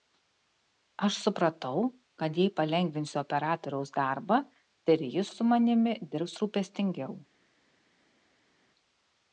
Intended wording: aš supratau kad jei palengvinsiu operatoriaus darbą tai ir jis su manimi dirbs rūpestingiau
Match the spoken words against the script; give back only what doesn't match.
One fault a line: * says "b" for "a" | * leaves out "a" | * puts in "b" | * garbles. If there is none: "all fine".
all fine